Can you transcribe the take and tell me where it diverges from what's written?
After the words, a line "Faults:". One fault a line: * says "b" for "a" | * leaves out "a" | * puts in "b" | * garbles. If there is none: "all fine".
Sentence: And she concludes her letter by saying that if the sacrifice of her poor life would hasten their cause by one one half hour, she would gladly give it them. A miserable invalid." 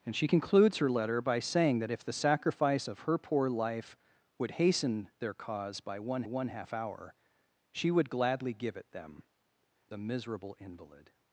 And she concludes her letter by saying that if the sacrifice of her poor life would hasten their cause by one one half hour, she would gladly give it them. A miserable invalid."
Faults:
all fine